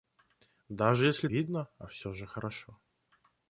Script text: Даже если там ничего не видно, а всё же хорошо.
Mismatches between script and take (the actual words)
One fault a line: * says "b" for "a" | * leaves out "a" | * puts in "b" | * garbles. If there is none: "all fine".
* leaves out "там ничего не"